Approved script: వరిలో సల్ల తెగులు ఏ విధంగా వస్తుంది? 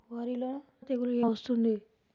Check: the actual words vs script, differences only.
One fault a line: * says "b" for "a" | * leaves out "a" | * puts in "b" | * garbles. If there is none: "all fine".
* leaves out "సల్ల"
* leaves out "విధంగా"